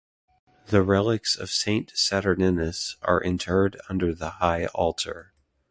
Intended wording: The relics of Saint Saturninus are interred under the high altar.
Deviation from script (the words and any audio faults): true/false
false